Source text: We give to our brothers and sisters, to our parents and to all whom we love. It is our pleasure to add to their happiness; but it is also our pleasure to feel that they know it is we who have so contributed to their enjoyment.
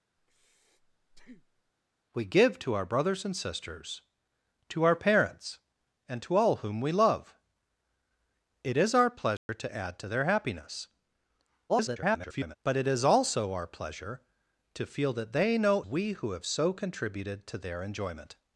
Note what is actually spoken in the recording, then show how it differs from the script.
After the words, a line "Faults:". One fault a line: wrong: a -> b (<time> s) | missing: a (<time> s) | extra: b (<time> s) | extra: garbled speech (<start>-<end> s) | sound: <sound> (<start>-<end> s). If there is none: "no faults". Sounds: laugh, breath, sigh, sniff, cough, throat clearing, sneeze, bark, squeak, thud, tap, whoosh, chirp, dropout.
We give to our brothers and sisters, to our parents and to all whom we love. It is our pleasure to add to their happiness; [garbled] but it is also our pleasure to feel that they know we who have so contributed to their enjoyment.
Faults:
sound: breath (0.2-1.7 s)
sound: dropout (9.4-9.5 s)
extra: garbled speech (11.7-12.6 s)
missing: it is (15.8 s)